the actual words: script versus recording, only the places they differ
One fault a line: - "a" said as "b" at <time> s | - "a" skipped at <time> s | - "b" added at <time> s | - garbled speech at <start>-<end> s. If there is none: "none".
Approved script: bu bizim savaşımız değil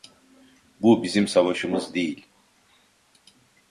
none